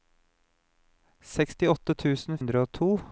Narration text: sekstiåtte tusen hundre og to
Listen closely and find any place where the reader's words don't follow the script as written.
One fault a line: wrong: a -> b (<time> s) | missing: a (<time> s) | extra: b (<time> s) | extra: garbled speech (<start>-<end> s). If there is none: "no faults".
no faults